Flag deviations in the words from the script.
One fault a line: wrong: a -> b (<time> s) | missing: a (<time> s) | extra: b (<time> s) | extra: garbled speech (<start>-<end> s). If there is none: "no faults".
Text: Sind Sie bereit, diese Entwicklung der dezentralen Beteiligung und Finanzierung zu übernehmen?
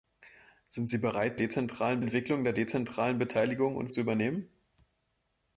wrong: diese -> dezentralen (1.4 s)
missing: Finanzierung (3.9 s)